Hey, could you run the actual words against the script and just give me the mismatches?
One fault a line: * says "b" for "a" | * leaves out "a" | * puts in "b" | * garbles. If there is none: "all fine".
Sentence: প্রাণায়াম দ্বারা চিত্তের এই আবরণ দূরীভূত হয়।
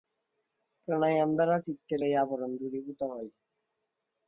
all fine